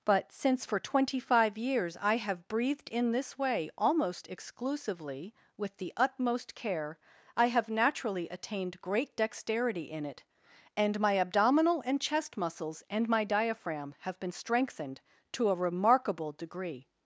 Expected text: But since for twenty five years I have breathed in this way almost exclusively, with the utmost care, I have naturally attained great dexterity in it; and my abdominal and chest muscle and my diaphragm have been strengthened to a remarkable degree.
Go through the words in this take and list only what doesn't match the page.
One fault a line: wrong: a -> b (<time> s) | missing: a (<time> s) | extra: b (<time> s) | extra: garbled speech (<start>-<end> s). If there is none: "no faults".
wrong: muscle -> muscles (12.3 s)